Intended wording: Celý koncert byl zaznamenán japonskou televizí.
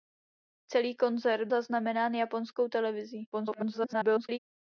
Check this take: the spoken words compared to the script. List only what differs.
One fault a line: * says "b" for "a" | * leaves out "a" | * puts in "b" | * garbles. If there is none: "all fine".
* leaves out "byl"
* garbles